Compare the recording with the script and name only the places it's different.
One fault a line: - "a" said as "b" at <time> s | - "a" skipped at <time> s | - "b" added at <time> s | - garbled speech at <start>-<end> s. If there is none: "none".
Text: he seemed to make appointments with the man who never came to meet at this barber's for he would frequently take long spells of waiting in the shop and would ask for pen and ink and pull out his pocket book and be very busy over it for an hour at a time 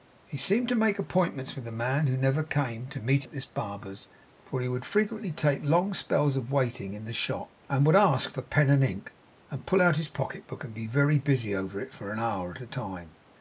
none